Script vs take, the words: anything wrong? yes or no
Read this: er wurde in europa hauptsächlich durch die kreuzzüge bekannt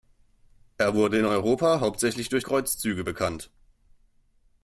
yes